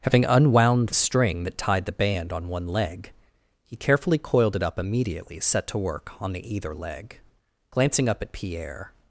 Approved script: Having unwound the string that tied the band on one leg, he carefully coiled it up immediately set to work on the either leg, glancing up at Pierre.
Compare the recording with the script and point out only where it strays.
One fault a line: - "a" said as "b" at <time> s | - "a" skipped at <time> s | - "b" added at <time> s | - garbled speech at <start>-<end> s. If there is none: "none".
none